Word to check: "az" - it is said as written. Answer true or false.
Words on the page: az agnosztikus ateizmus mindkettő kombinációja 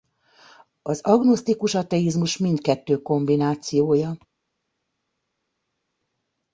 true